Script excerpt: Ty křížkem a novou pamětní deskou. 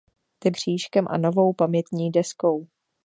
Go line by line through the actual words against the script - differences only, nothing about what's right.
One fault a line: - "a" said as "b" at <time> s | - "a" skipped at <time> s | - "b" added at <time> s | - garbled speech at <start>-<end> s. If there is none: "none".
none